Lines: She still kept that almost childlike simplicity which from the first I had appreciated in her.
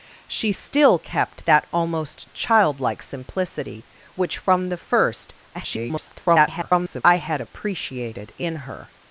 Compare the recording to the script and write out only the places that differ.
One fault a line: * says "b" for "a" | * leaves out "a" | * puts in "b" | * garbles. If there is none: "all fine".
* garbles